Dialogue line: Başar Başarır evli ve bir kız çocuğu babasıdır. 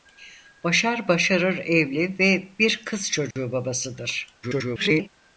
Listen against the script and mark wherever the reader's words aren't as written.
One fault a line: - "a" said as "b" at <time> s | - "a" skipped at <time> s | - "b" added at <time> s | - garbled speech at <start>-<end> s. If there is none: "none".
- garbled speech at 4.4-5.1 s